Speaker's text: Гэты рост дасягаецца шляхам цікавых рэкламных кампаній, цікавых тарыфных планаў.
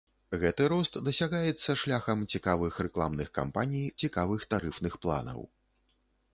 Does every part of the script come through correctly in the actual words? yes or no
yes